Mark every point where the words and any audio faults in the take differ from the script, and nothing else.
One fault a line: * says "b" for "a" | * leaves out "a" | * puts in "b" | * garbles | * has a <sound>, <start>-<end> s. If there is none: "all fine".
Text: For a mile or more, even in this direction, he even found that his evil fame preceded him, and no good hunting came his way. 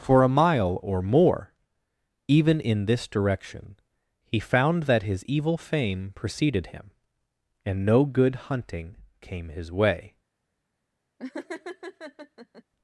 * leaves out "even"
* has a laugh, 11.2-12.6 s